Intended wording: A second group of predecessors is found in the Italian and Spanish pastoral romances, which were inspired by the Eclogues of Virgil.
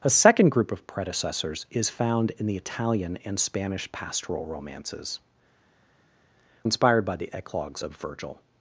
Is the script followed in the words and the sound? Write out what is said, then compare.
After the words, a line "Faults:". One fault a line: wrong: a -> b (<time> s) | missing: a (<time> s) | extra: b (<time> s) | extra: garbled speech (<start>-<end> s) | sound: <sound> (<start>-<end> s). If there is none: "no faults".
A second group of predecessors is found in the Italian and Spanish pastoral romances, inspired by the Eclogues of Virgil.
Faults:
missing: which were (5.2 s)